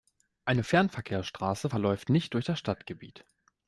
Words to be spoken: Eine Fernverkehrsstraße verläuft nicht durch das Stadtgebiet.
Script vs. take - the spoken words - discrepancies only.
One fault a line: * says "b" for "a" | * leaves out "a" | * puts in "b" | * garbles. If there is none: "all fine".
all fine